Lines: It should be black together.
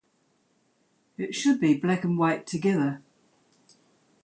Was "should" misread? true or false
false